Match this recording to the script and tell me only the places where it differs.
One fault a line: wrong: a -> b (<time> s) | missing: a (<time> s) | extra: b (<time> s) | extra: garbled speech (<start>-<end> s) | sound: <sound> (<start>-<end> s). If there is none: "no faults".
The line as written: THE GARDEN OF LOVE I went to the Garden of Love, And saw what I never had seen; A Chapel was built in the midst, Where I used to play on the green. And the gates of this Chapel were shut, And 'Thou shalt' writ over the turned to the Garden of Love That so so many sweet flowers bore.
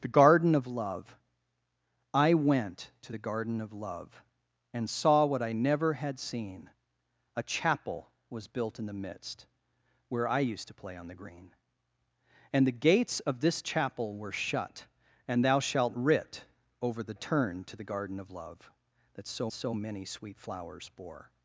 no faults